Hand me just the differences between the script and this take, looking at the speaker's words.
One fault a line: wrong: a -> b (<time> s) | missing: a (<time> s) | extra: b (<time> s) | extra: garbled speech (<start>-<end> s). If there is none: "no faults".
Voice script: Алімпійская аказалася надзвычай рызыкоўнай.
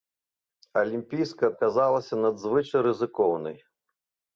no faults